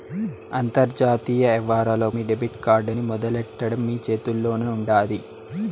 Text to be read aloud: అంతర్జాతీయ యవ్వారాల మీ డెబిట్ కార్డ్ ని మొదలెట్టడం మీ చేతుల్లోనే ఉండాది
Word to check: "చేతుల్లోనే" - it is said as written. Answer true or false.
true